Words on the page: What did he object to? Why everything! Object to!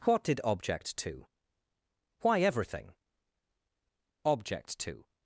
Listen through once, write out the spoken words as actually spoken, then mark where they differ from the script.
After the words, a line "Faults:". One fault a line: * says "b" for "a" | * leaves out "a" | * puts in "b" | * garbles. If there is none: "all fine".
What did object to? Why everything! Object to!
Faults:
* leaves out "he"